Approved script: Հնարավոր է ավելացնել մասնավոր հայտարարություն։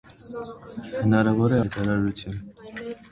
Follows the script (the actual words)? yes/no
no